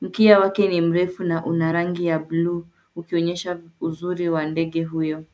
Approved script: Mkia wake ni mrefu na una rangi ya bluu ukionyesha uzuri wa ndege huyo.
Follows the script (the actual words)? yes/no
yes